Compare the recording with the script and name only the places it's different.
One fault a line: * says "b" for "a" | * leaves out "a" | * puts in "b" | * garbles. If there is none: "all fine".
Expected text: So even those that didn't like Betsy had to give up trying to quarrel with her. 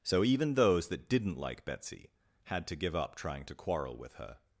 all fine